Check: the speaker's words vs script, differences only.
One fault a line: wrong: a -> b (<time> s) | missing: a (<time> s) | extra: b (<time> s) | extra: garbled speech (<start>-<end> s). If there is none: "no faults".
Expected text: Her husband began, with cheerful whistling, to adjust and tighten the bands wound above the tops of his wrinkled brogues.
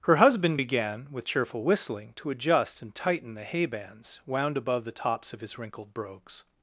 extra: hay (3.4 s)